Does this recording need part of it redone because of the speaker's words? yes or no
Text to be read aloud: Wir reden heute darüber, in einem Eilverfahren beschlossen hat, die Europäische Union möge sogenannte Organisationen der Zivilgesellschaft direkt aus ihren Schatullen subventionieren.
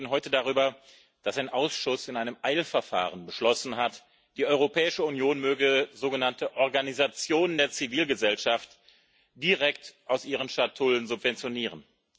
yes